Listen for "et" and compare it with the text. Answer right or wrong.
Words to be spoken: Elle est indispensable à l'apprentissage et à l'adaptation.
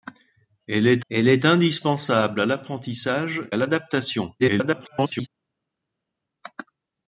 wrong